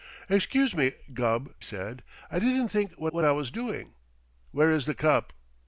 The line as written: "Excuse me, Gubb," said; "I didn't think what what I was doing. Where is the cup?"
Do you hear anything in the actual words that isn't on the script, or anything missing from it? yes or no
no